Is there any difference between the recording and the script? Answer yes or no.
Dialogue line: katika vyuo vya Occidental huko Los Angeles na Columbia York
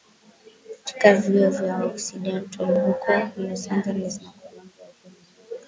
yes